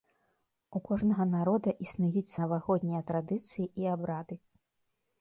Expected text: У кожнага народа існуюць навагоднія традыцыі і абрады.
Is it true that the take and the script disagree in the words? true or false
false